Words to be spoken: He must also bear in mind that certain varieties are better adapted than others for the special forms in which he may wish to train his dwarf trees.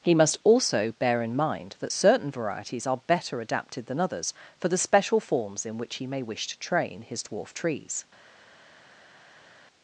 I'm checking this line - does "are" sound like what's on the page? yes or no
yes